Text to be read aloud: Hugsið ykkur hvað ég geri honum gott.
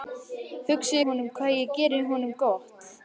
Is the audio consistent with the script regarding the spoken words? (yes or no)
no